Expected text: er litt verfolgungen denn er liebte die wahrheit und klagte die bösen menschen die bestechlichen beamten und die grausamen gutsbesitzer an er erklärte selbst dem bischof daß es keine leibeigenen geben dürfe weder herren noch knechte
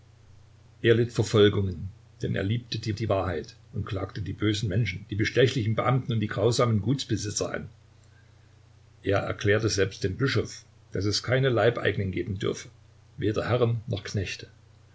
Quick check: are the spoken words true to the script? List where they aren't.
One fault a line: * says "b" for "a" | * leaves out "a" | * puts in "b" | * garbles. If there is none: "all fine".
* puts in "die"